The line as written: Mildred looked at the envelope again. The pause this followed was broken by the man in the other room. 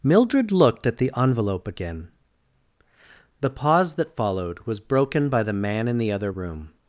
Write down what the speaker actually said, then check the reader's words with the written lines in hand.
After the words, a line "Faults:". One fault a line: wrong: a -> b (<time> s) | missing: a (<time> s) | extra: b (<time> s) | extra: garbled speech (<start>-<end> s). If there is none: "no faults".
Mildred looked at the envelope again. The pause that followed was broken by the man in the other room.
Faults:
wrong: this -> that (4.0 s)